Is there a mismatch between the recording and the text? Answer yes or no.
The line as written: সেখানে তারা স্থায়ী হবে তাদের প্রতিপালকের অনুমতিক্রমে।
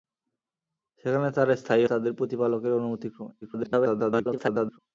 yes